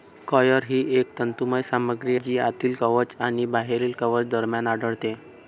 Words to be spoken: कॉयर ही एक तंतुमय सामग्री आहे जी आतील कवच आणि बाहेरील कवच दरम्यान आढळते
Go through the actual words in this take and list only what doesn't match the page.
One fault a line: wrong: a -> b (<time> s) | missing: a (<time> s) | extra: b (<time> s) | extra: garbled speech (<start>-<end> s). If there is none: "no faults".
missing: आहे (2.2 s)